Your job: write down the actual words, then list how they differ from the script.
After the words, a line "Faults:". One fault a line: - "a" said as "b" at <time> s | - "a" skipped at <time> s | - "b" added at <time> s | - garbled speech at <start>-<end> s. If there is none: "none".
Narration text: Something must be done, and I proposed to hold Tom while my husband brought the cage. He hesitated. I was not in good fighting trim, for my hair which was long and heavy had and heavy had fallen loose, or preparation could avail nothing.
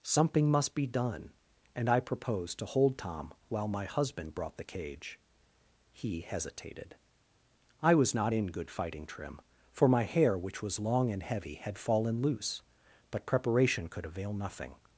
Something must be done, and I proposed to hold Tom while my husband brought the cage. He hesitated. I was not in good fighting trim, for my hair which was long and heavy had fallen loose, but preparation could avail nothing.
Faults:
- "and heavy had" skipped at 11.8 s
- "or" said as "but" at 13.1 s